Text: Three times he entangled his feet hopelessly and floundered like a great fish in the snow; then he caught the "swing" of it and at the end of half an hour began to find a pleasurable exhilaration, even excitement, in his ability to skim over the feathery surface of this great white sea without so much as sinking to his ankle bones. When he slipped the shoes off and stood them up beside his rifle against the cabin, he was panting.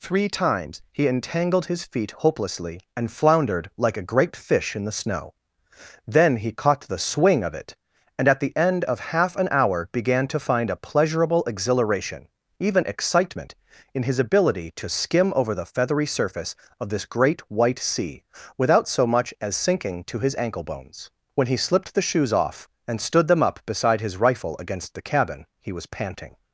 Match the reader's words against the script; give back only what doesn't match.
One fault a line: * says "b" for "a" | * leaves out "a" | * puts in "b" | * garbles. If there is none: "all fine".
all fine